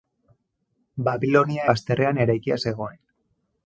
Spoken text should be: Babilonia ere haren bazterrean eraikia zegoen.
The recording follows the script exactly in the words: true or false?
false